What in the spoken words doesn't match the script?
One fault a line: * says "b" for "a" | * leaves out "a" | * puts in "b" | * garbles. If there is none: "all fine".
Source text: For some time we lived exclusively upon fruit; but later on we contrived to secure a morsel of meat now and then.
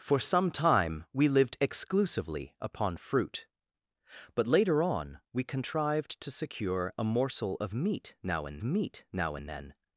* puts in "meat now and"